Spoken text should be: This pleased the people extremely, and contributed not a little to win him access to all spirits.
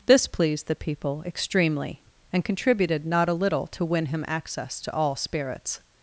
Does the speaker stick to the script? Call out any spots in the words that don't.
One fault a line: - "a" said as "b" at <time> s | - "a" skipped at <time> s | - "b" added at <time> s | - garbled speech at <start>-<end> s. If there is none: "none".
none